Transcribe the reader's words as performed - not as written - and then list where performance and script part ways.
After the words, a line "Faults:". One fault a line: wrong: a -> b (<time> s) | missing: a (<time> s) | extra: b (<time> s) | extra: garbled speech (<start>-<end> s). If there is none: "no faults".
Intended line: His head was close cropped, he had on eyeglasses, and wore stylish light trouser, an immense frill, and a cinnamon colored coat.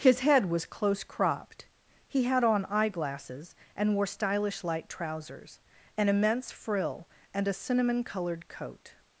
His head was close cropped, he had on eyeglasses, and wore stylish light trousers, an immense frill, and a cinnamon colored coat.
Faults:
wrong: trouser -> trousers (4.9 s)